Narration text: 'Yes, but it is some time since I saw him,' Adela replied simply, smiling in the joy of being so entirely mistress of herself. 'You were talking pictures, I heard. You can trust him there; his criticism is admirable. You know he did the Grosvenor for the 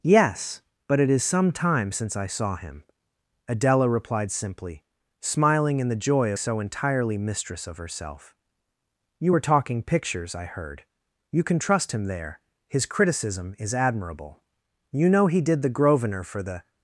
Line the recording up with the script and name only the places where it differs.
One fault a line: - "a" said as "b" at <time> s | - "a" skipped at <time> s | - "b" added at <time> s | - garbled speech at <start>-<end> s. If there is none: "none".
- "of being" skipped at 6.3 s